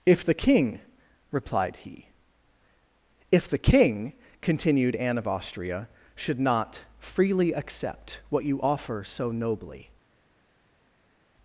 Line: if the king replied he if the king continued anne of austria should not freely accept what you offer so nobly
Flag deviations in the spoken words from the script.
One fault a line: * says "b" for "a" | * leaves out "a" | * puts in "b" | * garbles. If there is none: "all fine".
all fine